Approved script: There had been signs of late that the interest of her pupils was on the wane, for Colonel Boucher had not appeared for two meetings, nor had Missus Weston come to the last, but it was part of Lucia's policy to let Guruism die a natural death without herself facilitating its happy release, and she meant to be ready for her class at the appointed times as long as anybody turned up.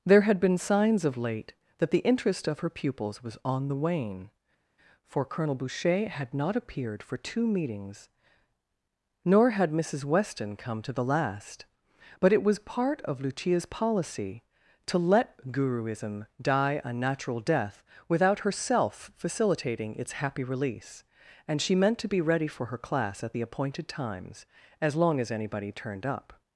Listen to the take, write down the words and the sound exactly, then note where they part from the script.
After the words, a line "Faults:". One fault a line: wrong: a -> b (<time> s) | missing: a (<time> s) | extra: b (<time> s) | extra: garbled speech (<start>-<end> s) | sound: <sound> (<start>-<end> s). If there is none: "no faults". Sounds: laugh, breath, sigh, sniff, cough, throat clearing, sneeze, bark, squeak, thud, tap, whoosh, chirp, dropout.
There had been signs of late that the interest of her pupils was on the wane, for Colonel Boucher had not appeared for two meetings, nor had Missus Weston come to the last, but it was part of Lucia's policy to let Guruism die a natural death without herself facilitating its happy release, and she meant to be ready for her class at the appointed times as long as anybody turned up.
Faults:
no faults